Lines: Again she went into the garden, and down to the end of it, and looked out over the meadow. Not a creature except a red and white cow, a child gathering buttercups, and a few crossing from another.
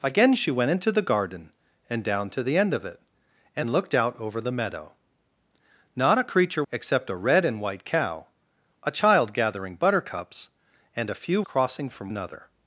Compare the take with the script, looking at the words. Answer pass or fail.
pass